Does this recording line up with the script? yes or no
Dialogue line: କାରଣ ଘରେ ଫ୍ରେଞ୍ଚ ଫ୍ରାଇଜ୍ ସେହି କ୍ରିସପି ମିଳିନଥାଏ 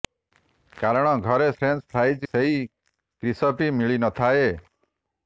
yes